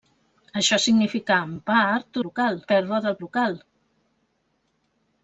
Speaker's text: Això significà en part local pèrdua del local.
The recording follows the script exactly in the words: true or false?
true